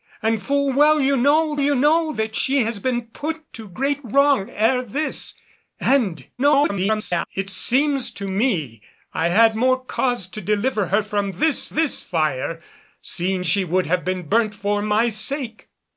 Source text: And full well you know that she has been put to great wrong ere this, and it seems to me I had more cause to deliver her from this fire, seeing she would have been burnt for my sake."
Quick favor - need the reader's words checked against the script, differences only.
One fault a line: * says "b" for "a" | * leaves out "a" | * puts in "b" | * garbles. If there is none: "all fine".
* puts in "you know"
* garbles
* puts in "this"